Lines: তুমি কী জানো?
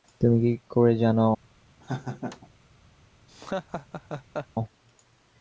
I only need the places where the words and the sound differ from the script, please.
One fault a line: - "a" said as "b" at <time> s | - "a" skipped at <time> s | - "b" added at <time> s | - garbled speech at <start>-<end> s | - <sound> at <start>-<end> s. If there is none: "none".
- "করে" added at 0.7 s
- laugh at 1.8-2.5 s
- laugh at 3.3-4.5 s